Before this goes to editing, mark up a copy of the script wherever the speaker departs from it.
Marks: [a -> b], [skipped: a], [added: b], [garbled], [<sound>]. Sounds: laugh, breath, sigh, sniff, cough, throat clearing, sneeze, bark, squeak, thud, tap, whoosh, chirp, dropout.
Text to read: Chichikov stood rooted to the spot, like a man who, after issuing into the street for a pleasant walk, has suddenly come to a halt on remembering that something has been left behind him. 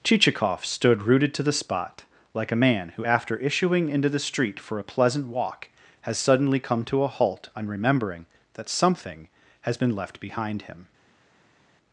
Chichikov stood rooted to the spot, like a man who, after issuing into the street for a pleasant walk, has suddenly come to a halt on remembering that something has been left behind him.